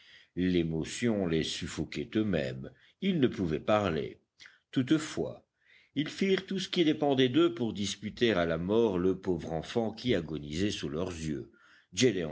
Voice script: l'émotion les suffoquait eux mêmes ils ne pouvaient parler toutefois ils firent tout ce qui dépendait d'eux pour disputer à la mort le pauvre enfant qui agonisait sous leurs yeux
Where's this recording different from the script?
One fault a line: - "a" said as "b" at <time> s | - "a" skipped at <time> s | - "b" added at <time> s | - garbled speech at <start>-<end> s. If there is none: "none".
none